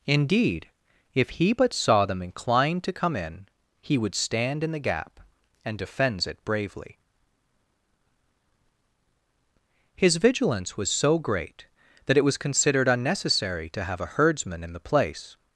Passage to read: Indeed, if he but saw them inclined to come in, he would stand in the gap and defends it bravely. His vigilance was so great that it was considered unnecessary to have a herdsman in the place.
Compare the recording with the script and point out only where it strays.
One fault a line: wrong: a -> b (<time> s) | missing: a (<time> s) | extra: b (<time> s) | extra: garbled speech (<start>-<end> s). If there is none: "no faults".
no faults